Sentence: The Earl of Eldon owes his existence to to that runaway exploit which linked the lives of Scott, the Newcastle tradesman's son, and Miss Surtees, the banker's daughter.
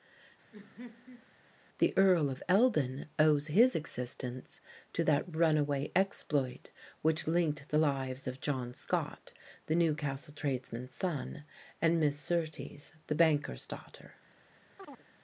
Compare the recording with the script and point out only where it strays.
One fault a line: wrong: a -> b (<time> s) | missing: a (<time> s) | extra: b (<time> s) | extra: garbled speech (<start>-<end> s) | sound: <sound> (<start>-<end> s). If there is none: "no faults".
sound: laugh (0.5-1.3 s)
missing: to (5.0 s)
extra: John (8.4 s)
sound: chirp (14.8-15.0 s)